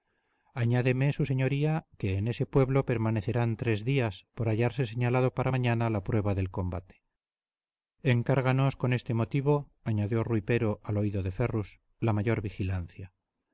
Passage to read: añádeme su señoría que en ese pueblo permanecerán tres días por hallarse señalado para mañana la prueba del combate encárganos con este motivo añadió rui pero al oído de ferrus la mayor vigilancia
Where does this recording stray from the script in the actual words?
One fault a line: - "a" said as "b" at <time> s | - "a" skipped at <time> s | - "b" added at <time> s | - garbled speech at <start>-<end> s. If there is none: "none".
none